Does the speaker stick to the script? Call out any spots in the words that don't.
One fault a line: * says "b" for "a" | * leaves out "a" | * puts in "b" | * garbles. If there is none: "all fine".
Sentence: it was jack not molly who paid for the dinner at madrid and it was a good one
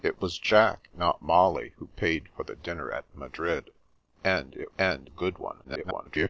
* says "and" for "was"
* garbles